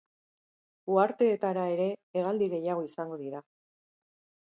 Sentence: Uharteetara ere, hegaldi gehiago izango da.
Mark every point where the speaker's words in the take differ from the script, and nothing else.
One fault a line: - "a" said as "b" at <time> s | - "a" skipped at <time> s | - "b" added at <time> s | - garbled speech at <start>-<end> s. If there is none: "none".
- "da" said as "dira" at 3.2 s